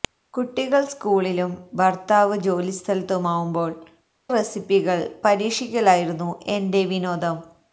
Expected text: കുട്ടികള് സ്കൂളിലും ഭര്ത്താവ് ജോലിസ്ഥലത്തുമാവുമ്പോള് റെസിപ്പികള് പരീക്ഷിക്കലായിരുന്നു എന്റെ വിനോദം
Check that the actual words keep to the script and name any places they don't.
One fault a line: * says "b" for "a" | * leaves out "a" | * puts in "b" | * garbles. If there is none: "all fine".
all fine